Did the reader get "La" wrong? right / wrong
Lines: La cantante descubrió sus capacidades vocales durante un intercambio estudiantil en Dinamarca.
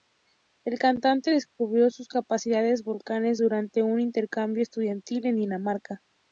wrong